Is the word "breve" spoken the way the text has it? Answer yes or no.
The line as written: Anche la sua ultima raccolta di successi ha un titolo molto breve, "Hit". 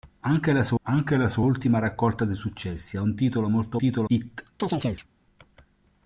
no